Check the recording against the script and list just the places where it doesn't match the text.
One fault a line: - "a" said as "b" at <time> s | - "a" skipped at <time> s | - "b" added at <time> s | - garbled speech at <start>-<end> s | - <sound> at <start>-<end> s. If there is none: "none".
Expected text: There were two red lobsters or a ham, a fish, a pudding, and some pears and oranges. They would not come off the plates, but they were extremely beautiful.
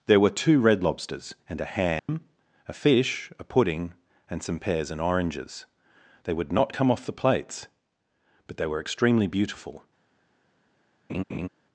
- "or" said as "and" at 1.5 s
- dropout at 2.0-2.1 s
- laugh at 11.1-11.5 s